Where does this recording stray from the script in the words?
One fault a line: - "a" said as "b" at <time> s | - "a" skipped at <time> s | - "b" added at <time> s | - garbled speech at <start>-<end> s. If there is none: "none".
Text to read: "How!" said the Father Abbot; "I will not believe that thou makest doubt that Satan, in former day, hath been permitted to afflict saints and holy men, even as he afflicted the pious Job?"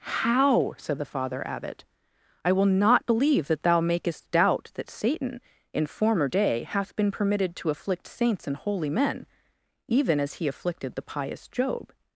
none